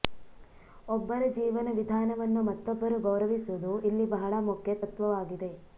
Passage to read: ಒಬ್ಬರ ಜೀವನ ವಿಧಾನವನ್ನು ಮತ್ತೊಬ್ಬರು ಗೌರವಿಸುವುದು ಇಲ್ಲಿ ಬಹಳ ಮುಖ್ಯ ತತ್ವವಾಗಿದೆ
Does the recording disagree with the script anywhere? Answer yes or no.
no